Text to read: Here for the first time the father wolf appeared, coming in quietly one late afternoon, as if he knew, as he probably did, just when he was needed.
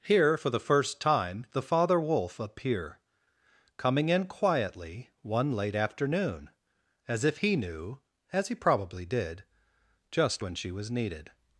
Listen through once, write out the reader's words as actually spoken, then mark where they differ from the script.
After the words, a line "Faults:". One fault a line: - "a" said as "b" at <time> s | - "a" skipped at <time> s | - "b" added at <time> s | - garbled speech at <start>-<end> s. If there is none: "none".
Here for the first time the father wolf appear, coming in quietly one late afternoon, as if he knew, as he probably did, just when she was needed.
Faults:
- "appeared" said as "appear" at 2.4 s
- "he" said as "she" at 10.5 s